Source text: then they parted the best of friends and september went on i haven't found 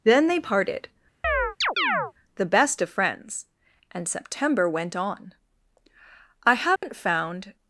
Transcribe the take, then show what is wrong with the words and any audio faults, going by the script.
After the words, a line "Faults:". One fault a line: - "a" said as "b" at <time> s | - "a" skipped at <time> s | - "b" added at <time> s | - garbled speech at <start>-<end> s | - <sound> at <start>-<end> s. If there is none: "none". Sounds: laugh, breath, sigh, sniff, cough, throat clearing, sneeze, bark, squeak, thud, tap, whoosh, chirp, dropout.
then they parted the best of friends and september went on i haven't found
Faults:
- chirp at 1.2-2.1 s
- dropout at 6.8-6.8 s